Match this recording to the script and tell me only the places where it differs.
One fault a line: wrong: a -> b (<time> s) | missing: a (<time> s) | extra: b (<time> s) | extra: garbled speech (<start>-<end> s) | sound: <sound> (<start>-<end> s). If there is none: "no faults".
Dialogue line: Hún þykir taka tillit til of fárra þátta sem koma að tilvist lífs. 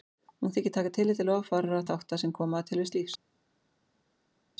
no faults